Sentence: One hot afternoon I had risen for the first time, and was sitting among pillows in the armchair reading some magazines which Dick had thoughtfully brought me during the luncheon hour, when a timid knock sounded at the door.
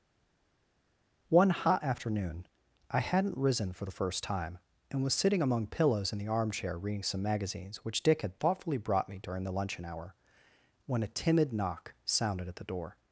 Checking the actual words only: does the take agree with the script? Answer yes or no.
no